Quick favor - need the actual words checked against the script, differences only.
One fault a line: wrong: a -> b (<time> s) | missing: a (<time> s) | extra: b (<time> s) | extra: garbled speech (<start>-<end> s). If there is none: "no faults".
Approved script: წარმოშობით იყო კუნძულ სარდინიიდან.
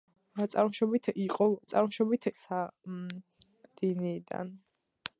wrong: კუნძულ -> წარმოშობით (1.7 s)